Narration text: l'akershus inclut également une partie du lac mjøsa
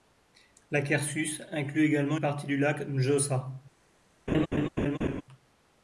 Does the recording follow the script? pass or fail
fail